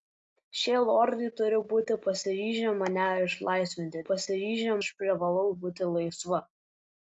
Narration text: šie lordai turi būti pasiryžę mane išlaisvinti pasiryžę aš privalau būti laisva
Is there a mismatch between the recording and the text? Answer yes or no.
no